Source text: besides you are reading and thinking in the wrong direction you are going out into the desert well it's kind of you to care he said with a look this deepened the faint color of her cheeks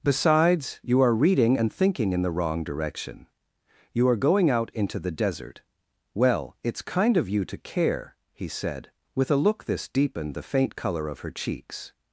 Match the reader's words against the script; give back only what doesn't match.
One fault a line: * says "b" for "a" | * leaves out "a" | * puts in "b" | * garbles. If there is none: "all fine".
all fine